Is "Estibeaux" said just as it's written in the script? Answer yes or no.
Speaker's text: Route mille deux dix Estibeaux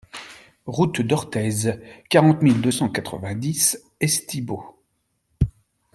yes